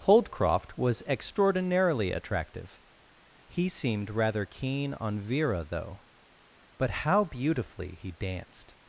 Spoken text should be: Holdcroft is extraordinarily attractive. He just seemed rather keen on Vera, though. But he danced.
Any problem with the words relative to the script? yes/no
yes